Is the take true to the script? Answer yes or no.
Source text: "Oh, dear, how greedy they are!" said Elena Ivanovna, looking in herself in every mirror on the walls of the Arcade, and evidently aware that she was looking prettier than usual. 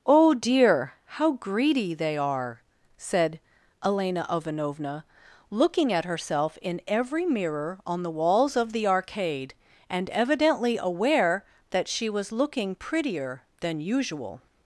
no